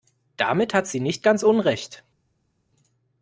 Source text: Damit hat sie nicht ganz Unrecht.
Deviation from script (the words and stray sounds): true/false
false